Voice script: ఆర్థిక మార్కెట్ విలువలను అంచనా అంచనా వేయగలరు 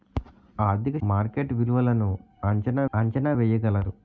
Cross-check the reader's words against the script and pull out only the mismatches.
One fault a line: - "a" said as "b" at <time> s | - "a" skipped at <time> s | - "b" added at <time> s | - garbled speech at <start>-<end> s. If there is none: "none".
none